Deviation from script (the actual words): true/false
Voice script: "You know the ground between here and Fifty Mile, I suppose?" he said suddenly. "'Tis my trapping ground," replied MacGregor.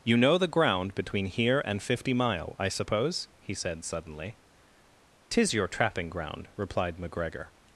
true